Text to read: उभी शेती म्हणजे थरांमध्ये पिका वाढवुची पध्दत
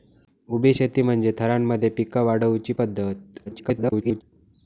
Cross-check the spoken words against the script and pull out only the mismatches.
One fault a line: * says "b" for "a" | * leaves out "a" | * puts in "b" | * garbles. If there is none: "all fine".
* garbles